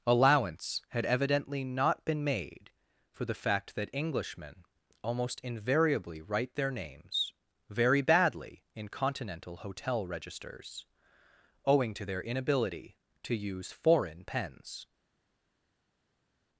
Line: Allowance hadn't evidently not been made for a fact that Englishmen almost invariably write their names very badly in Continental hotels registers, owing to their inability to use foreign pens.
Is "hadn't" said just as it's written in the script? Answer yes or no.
no